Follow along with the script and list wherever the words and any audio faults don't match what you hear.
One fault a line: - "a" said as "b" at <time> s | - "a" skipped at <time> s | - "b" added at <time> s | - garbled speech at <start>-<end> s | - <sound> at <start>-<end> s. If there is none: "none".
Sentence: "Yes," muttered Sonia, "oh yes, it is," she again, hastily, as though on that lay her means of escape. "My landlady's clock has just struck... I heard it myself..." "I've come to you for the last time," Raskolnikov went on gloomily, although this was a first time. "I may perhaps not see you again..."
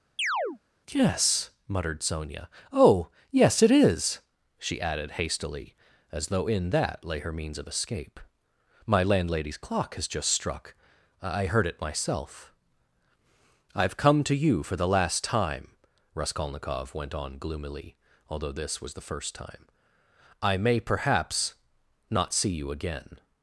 - chirp at 0.2-0.6 s
- "again" said as "added" at 4.8 s
- "on" said as "in" at 6.5 s
- "a" said as "the" at 18.9 s